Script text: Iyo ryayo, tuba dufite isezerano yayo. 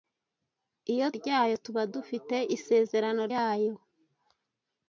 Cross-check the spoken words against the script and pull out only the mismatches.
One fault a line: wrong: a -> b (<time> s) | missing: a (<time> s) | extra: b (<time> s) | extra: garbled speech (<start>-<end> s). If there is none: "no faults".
no faults